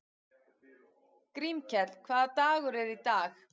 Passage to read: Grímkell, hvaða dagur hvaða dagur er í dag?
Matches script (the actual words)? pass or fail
fail